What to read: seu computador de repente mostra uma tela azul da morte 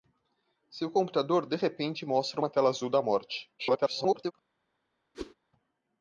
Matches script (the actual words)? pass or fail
fail